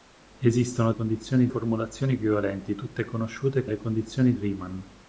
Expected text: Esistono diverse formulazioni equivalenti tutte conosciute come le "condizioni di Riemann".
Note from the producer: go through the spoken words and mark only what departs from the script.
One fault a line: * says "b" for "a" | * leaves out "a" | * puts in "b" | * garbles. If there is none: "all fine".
* says "condizioni" for "diverse"
* leaves out "come"
* leaves out "di"